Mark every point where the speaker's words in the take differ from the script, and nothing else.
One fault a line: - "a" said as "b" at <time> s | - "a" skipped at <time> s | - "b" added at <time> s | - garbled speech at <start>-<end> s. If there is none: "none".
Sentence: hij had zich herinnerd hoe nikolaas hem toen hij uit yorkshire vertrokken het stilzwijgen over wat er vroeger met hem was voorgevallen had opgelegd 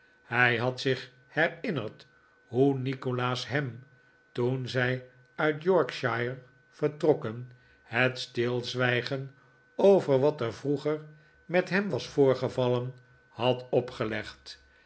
- "hij" said as "zij" at 4.7 s